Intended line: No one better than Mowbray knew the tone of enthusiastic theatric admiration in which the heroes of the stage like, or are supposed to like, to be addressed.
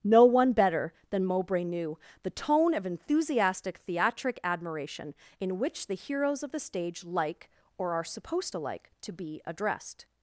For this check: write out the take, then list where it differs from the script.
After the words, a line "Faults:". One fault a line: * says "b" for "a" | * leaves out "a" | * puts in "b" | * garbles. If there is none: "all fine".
No one better than Mowbray knew the tone of enthusiastic theatric admiration in which the heroes of the stage like, or are supposed to like, to be addressed.
Faults:
all fine